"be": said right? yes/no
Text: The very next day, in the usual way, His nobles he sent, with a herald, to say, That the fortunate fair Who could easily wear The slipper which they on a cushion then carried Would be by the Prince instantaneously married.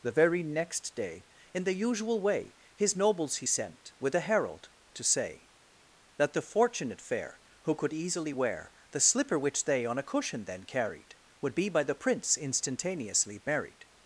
yes